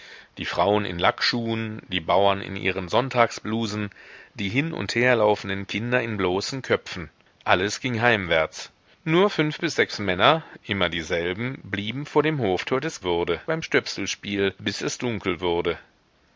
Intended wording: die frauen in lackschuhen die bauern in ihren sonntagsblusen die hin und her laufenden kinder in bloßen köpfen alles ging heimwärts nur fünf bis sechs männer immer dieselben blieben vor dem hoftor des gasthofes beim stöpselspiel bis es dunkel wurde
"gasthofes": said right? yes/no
no